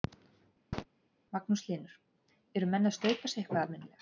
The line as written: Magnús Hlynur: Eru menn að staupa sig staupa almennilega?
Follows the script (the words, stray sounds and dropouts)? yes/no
no